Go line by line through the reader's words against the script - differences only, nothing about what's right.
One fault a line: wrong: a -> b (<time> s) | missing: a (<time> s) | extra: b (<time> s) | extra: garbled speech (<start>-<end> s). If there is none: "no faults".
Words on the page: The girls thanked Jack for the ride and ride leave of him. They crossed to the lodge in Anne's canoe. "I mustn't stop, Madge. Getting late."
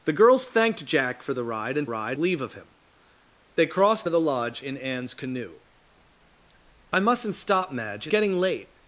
no faults